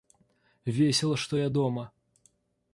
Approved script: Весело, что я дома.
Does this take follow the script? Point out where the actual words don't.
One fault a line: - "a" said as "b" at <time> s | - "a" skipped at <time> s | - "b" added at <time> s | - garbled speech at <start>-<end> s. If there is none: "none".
none